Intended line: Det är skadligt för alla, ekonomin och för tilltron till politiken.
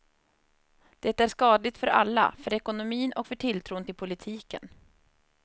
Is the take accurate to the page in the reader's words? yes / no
no